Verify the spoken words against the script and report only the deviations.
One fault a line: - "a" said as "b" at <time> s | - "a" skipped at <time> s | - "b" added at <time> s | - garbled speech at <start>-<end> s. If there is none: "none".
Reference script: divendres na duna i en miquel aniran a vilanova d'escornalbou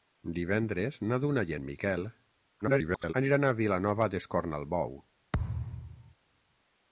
- garbled speech at 2.6-3.1 s